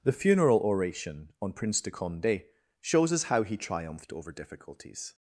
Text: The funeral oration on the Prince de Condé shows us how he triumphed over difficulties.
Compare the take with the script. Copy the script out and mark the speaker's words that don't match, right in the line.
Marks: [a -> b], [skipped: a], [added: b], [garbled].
The funeral oration on [skipped: the] Prince de Condé shows us how he triumphed over difficulties.